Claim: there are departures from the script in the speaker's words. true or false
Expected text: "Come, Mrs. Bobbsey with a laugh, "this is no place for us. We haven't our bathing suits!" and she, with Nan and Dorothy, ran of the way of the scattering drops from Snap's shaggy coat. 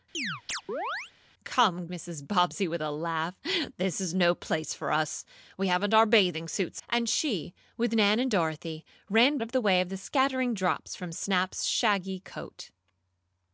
false